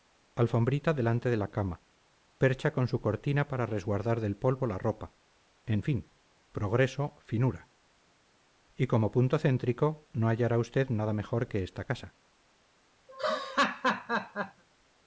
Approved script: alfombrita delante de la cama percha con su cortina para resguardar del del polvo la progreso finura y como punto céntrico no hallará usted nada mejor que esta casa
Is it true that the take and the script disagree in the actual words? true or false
true